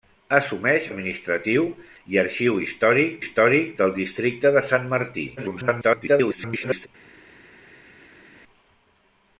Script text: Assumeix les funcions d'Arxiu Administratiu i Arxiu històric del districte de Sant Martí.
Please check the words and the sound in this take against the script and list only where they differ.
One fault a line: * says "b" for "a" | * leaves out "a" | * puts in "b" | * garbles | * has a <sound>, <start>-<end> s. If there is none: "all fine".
* leaves out "les funcions d'Arxiu"
* puts in "històric"
* garbles